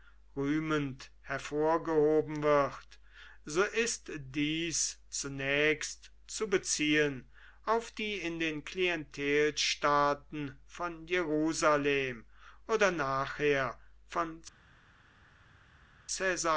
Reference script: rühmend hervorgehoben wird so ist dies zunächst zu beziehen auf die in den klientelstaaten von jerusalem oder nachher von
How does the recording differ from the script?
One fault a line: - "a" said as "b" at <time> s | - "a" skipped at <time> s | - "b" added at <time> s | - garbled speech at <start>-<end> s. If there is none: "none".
none